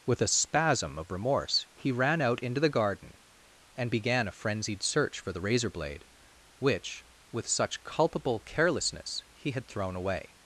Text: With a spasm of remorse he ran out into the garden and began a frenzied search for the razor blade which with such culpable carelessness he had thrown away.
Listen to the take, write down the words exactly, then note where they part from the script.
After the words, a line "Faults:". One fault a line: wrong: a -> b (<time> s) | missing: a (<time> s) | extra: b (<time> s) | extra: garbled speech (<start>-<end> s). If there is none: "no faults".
With a spasm of remorse he ran out into the garden and began a frenzied search for the razor blade which with such culpable carelessness he had thrown away.
Faults:
no faults